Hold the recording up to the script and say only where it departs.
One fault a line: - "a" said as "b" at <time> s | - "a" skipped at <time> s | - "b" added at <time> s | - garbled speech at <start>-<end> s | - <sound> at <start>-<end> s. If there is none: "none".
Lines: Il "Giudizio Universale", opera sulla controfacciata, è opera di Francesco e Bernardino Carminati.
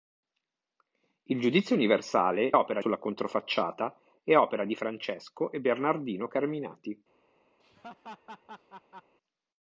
- laugh at 7.6-9.1 s